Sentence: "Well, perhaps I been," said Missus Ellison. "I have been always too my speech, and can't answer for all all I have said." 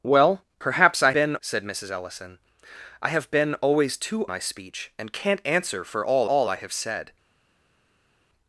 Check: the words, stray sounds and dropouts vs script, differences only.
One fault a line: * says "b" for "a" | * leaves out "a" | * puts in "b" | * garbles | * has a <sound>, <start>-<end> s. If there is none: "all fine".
all fine